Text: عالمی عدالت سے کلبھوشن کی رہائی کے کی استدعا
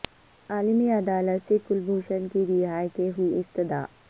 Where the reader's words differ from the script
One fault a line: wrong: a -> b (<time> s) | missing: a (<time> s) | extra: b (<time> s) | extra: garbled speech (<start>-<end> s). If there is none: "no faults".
no faults